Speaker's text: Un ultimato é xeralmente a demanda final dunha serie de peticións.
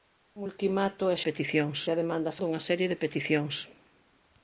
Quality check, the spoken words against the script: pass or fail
fail